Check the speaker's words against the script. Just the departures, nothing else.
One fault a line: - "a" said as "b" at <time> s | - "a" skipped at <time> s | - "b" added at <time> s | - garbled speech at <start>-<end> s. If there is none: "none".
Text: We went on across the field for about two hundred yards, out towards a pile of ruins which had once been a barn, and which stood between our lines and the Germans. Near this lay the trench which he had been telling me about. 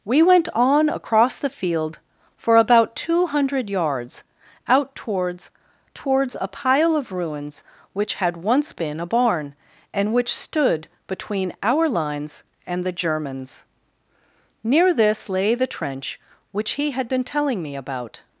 - "towards" added at 5.9 s